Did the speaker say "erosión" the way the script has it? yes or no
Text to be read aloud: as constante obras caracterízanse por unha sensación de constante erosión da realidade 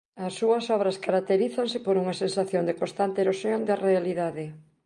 yes